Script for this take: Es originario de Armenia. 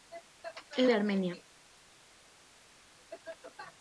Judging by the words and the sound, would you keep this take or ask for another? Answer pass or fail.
fail